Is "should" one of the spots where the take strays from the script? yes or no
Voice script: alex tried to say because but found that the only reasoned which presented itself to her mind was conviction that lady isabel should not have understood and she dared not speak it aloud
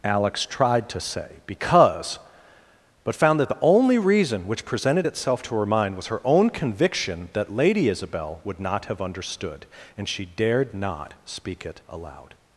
yes